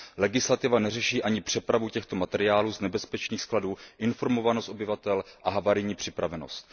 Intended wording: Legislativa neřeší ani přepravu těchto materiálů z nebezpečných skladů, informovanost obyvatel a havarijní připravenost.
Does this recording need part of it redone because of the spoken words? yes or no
no